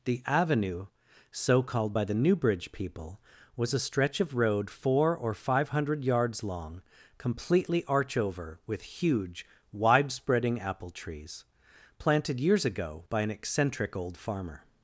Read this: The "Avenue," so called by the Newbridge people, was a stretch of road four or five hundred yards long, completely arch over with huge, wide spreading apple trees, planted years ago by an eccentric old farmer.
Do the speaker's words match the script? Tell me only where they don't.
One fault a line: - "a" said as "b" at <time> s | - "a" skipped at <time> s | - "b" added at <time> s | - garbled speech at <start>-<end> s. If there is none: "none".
none